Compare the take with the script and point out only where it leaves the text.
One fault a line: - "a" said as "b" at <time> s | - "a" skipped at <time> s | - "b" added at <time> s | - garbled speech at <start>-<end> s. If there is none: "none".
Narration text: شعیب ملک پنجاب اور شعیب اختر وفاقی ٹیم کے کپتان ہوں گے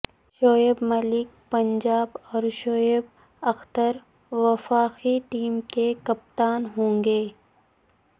none